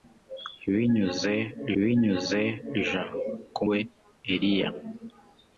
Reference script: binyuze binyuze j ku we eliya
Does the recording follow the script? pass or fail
pass